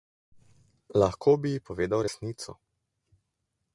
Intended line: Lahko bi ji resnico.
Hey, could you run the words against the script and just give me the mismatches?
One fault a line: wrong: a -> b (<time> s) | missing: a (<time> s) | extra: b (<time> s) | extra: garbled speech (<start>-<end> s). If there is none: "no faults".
extra: povedal (1.7 s)